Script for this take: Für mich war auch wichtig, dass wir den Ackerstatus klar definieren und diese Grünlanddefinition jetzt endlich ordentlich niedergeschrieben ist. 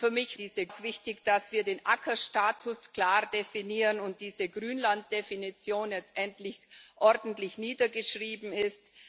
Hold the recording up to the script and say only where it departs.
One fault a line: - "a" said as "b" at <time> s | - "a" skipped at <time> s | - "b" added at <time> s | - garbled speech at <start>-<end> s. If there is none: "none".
- "war" said as "diese" at 0.4 s